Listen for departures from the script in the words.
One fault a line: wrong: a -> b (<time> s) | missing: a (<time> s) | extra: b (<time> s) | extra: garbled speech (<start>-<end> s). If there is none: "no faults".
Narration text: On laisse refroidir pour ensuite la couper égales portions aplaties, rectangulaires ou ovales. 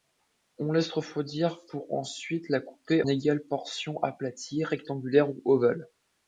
no faults